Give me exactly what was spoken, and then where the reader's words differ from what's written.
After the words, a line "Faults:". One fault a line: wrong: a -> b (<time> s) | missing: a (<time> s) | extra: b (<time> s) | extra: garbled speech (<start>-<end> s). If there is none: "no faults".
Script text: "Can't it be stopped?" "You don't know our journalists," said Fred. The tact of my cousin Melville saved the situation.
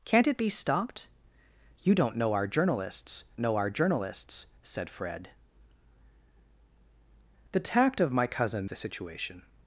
"Can't it be stopped?" "You don't know our journalists know our journalists," said Fred. The tact of my cousin The situation.
Faults:
extra: know our journalists (3.4 s)
missing: Melville saved (8.7 s)